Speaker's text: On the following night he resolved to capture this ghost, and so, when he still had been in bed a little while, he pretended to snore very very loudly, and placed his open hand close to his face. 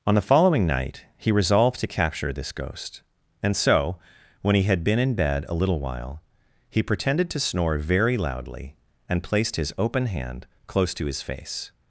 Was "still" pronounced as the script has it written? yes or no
no